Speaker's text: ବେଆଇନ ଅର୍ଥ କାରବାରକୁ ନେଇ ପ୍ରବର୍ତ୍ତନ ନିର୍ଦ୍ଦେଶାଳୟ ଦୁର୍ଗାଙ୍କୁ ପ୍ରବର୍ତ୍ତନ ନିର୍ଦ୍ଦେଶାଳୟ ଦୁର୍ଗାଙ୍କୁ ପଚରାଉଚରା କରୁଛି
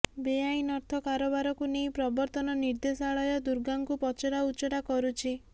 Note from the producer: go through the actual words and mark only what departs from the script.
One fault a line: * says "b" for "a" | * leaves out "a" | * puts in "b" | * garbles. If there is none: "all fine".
* leaves out "ପ୍ରବର୍ତ୍ତନ ନିର୍ଦ୍ଦେଶାଳୟ ଦୁର୍ଗାଙ୍କୁ"